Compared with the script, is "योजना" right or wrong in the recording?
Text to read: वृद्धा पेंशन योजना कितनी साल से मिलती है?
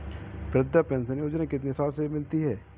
right